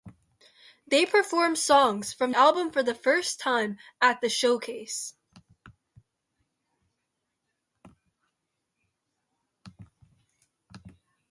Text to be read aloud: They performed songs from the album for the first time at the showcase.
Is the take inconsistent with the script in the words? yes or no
yes